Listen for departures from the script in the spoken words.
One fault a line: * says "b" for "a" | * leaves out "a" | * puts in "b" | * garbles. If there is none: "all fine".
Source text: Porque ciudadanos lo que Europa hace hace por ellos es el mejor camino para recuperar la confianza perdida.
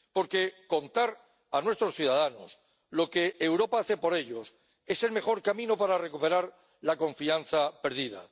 * puts in "contar a nuestros"
* leaves out "hace"